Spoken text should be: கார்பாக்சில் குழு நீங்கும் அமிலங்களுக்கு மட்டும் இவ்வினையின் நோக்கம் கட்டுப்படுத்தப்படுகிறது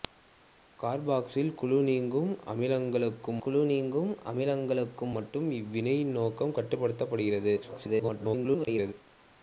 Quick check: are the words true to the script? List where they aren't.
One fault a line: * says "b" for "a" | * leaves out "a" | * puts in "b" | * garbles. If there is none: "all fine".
* puts in "குழு நீங்கும் அமிலங்களுக்கு"
* garbles